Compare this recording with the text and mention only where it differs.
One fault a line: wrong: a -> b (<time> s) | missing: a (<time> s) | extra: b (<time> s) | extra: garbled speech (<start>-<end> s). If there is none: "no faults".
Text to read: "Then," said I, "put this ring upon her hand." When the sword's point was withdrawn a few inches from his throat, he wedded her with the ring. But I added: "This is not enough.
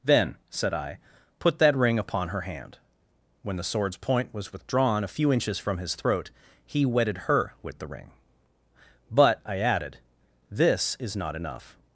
wrong: this -> that (1.6 s)